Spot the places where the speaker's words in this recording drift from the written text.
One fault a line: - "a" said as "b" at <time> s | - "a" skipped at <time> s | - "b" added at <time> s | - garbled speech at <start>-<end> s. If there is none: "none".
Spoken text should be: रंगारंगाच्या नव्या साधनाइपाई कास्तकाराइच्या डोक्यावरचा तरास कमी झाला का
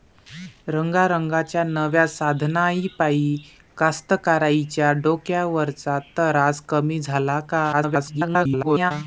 - garbled speech at 7.7-8.9 s